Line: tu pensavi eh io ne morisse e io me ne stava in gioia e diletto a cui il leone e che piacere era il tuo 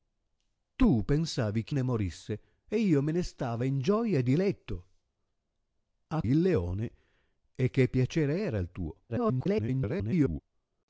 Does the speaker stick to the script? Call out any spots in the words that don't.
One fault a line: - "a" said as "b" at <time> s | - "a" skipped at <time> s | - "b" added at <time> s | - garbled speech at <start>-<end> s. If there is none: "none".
- "io" skipped at 1.8 s
- "cui" skipped at 6.2 s
- garbled speech at 9.1-10.4 s